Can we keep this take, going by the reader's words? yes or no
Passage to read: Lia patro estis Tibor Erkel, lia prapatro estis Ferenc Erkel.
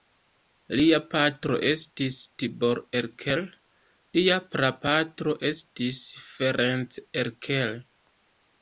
yes